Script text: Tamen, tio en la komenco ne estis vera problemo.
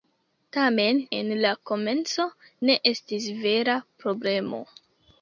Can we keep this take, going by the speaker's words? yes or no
no